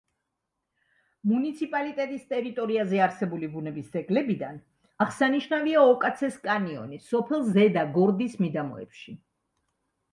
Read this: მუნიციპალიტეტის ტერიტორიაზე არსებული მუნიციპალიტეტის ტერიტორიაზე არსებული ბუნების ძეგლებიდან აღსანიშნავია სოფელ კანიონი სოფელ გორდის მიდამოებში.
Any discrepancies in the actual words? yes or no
yes